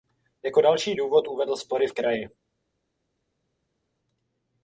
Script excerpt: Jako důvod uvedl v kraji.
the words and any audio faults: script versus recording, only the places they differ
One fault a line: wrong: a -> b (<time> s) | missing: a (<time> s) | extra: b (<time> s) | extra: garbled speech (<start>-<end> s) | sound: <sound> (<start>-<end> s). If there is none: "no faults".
extra: další (0.6 s)
extra: spory (1.6 s)